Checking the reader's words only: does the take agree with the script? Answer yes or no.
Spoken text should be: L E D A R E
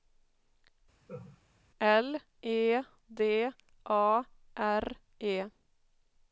yes